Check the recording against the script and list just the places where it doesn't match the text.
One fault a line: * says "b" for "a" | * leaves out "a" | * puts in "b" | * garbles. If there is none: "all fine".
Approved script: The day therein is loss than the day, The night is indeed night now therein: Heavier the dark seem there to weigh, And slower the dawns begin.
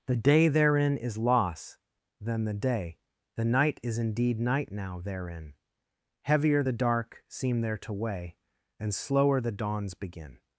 all fine